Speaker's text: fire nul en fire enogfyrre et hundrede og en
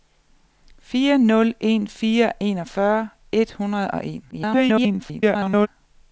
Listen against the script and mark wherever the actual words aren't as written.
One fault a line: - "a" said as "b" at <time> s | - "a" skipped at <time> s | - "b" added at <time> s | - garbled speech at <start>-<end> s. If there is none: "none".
- garbled speech at 4.3-5.7 s